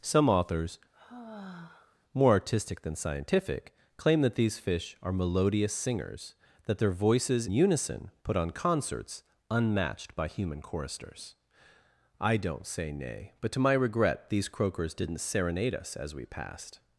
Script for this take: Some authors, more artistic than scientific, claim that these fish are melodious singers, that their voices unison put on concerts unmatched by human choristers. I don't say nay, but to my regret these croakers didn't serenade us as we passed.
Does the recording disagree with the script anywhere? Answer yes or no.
no